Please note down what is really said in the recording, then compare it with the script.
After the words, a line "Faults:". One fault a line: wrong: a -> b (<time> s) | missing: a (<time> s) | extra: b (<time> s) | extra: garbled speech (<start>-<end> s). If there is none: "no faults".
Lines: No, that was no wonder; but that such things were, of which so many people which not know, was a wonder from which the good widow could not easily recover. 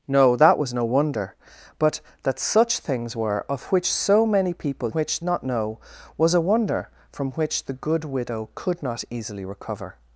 No, that was no wonder; but that such things were, of which so many people which not know, was a wonder from which the good widow could not easily recover.
Faults:
no faults